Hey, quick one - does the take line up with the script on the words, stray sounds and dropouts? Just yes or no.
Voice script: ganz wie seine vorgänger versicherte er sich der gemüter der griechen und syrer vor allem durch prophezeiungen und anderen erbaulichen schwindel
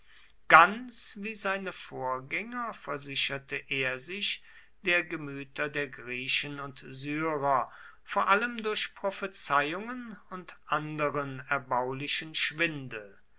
yes